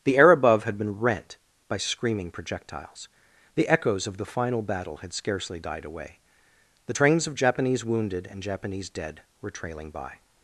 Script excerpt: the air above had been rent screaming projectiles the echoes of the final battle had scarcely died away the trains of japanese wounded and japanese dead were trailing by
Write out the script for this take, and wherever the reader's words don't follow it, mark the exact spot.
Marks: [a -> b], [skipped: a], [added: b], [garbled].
the air above had been rent [added: by] screaming projectiles the echoes of the final battle had scarcely died away the trains of japanese wounded and japanese dead were trailing by